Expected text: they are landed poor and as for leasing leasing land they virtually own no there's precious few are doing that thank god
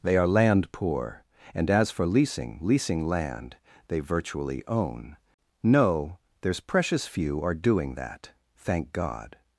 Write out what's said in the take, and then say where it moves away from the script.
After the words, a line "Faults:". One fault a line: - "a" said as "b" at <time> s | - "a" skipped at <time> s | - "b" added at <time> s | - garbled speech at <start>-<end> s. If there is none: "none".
they are land poor and as for leasing leasing land they virtually own no there's precious few are doing that thank god
Faults:
- "landed" said as "land" at 0.3 s